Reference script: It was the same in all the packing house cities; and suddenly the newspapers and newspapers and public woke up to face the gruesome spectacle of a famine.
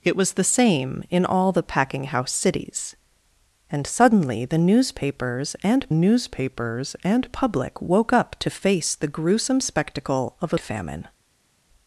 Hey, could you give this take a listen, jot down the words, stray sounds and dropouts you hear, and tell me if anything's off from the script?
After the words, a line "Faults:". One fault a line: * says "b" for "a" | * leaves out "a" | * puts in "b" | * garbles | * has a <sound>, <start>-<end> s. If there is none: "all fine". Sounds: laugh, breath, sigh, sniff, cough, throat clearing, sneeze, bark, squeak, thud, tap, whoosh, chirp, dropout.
It was the same in all the packing house cities; and suddenly the newspapers and newspapers and public woke up to face the gruesome spectacle of a famine.
Faults:
all fine